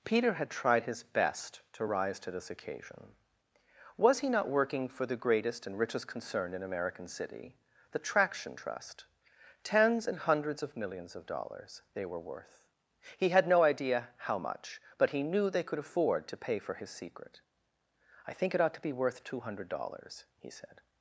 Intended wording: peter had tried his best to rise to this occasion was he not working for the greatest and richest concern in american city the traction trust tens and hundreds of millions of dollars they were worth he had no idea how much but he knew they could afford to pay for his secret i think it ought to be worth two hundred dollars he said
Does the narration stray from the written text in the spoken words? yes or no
no